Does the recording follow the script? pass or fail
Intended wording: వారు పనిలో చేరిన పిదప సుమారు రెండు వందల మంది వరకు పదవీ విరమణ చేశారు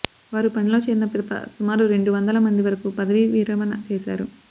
pass